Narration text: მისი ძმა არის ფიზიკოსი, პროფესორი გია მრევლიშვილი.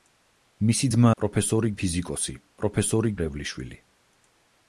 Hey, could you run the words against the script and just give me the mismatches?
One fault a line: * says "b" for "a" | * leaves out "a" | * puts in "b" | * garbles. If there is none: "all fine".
* says "პროფესორი" for "არის"
* leaves out "გია"